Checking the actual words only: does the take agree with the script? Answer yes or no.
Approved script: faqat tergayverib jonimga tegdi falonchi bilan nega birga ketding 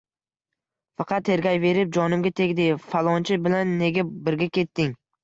yes